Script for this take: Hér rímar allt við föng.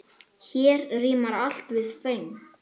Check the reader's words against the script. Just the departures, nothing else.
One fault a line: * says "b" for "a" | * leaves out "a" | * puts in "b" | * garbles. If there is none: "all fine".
all fine